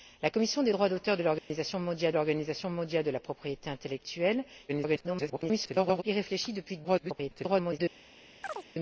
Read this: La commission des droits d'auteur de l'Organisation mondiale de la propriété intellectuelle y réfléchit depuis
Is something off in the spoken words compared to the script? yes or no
yes